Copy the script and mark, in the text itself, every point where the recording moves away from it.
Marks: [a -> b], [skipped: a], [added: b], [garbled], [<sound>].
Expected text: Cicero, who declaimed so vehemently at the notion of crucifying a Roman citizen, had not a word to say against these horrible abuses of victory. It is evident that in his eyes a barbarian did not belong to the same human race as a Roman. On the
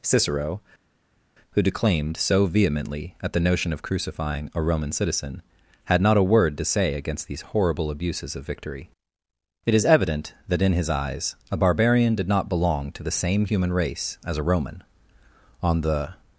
Cicero, who declaimed so vehemently at the notion of crucifying a Roman citizen, had not a word to say against these horrible abuses of victory. It is evident that in his eyes a barbarian did not belong to the same human race as a Roman. On the